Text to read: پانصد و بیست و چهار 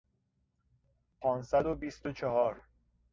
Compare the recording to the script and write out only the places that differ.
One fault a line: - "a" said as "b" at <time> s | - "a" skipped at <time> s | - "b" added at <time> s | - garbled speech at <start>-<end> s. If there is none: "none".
none